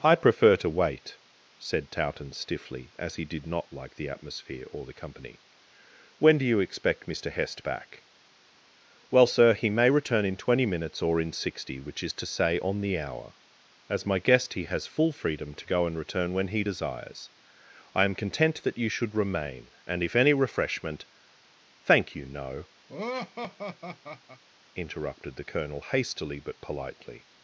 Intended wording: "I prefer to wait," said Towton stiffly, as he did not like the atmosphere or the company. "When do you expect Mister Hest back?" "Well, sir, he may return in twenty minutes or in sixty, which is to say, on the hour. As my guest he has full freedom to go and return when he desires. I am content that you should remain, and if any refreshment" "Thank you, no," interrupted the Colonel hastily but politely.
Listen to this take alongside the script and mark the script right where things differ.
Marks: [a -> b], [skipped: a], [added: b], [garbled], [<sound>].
"I prefer to wait," said Towton stiffly, as he did not like the atmosphere or the company. "When do you expect Mister Hest back?" "Well, sir, he may return in twenty minutes or in sixty, which is to say, on the hour. As my guest he has full freedom to go and return when he desires. I am content that you should remain, and if any refreshment" "Thank you, no," [laugh] interrupted the Colonel hastily but politely.